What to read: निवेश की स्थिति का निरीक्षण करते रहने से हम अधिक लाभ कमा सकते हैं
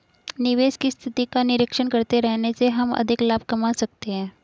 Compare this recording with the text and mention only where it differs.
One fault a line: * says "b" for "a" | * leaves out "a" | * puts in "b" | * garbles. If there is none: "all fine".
all fine